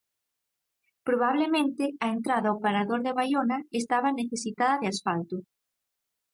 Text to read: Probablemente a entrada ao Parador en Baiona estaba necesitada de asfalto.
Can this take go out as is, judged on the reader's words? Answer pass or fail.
fail